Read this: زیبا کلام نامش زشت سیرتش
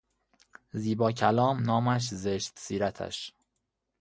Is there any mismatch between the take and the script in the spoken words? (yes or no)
no